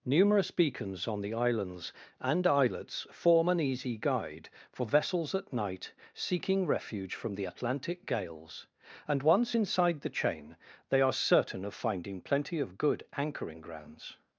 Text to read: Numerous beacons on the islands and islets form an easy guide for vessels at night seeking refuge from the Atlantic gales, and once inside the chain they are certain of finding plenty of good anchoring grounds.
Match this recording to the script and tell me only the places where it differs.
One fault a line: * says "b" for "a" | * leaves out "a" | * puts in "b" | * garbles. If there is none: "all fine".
all fine